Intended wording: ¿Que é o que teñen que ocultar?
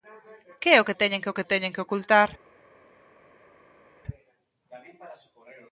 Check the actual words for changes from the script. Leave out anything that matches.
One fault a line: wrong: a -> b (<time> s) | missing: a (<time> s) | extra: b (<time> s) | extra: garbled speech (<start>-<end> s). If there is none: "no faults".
extra: que teñen que (1.4 s)